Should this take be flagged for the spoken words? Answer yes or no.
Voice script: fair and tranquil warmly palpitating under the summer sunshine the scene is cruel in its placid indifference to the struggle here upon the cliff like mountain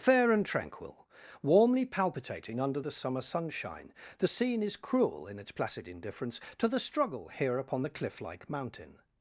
no